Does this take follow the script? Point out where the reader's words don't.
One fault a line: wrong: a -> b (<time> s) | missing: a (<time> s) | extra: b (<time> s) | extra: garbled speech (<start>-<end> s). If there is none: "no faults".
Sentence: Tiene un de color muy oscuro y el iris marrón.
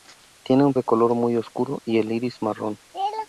no faults